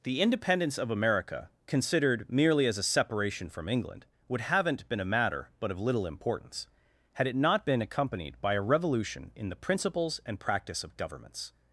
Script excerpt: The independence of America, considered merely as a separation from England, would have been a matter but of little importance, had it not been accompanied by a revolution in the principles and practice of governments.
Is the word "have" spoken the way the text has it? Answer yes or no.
no